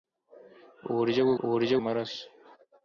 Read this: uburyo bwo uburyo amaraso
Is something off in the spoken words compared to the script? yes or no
no